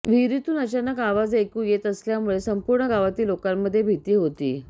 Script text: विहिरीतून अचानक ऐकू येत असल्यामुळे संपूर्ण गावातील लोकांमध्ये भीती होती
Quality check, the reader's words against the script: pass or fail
fail